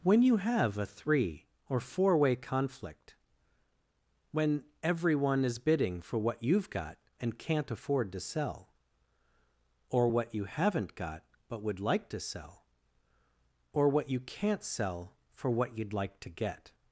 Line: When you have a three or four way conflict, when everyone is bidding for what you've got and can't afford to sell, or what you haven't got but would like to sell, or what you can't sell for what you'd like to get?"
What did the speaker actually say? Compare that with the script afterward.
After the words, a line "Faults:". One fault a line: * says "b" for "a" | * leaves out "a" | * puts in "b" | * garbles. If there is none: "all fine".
When you have a three or four way conflict, when everyone is bidding for what you've got and can't afford to sell, or what you haven't got but would like to sell, or what you can't sell for what you'd like to get?"
Faults:
all fine